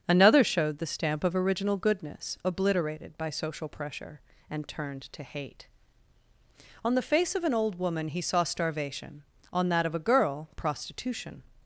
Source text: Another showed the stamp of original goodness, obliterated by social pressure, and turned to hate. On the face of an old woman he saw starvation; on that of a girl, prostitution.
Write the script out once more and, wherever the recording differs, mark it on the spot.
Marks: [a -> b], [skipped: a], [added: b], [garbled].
Another showed the stamp of original goodness, obliterated by social pressure, and turned to hate. On the face of an old woman he saw starvation; on that of a girl, prostitution.